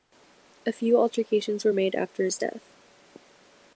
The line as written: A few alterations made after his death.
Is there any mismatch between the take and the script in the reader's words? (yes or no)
yes